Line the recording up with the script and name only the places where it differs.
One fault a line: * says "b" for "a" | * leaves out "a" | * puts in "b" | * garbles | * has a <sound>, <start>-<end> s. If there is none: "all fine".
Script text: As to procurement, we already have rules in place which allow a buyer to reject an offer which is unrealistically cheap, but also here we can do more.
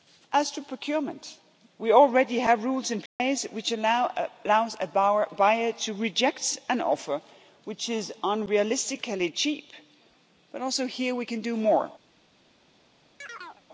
* has a dropout, 3.1-3.2 s
* has a chirp, 13.2-13.6 s